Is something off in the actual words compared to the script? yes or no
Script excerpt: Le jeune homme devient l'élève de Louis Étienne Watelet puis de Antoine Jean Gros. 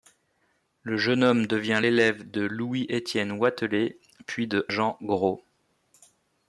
yes